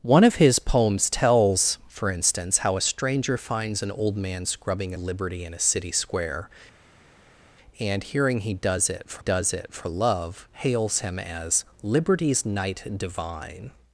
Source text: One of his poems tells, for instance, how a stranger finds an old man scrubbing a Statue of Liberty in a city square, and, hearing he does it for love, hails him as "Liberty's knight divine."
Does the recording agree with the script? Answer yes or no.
no